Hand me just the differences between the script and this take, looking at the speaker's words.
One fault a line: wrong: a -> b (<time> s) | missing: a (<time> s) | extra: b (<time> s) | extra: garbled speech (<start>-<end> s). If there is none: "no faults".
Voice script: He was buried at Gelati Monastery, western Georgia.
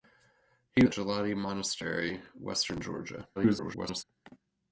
missing: was buried (0.8 s)
extra: garbled speech (3.4-4.0 s)